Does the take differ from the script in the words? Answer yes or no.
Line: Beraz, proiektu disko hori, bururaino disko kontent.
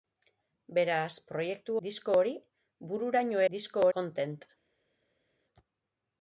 no